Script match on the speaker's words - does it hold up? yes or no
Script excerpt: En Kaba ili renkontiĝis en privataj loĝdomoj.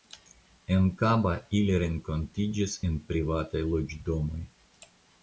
yes